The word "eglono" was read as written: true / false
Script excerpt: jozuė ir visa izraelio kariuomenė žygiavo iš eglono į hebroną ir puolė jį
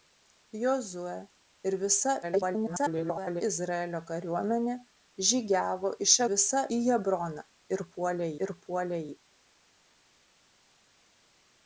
false